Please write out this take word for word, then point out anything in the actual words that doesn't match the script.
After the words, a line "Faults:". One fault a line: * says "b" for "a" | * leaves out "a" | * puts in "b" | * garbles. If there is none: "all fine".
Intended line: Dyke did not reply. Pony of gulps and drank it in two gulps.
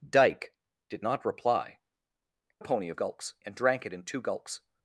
Dyke did not reply. Pony of gulps and drank it in two gulps.
Faults:
all fine